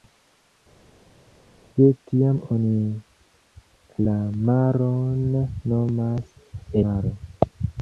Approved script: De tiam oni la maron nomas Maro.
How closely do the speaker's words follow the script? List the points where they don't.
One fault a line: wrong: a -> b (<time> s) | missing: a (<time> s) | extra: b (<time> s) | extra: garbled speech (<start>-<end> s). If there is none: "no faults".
no faults